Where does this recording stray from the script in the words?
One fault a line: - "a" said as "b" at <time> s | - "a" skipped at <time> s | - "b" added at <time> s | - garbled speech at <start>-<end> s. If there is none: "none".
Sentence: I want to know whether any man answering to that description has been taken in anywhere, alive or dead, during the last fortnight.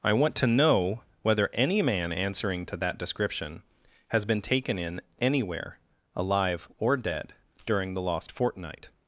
- "last" said as "lost" at 8.0 s